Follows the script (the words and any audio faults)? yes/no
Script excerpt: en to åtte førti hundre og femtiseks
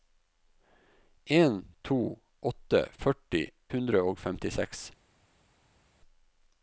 yes